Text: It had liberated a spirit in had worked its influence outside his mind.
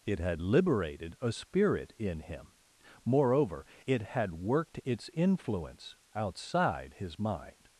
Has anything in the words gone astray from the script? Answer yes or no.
yes